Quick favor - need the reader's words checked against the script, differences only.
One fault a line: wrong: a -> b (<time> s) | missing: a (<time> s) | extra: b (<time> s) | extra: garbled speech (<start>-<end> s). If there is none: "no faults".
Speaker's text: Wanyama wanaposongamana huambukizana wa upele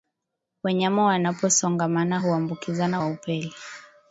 no faults